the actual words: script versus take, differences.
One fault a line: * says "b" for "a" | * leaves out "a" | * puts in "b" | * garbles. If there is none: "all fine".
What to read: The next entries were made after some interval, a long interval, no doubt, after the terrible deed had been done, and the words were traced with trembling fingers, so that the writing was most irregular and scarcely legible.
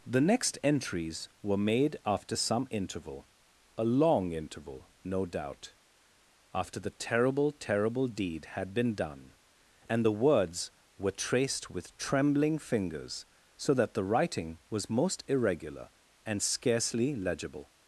* puts in "terrible"